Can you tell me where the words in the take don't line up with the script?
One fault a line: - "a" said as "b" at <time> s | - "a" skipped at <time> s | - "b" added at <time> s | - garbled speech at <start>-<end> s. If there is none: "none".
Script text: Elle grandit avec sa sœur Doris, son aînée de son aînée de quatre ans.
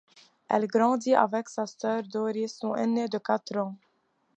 - "son aînée de" skipped at 3.2 s